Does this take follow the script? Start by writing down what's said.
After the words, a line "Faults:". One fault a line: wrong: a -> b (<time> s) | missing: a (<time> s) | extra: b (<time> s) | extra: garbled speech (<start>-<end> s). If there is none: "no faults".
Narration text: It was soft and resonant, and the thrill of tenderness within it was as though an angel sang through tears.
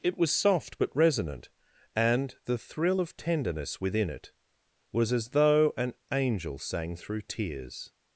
It was soft but resonant, and the thrill of tenderness within it was as though an angel sang through tears.
Faults:
wrong: and -> but (0.8 s)